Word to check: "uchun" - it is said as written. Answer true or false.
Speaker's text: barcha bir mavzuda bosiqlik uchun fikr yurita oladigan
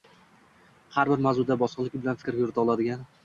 false